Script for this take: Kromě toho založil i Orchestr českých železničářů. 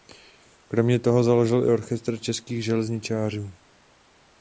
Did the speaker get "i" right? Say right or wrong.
right